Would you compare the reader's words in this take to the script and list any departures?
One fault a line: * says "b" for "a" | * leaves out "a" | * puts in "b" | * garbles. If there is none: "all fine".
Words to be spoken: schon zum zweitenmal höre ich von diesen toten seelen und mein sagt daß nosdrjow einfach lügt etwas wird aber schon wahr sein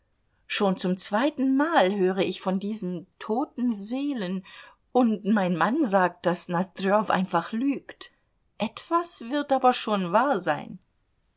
* puts in "mann"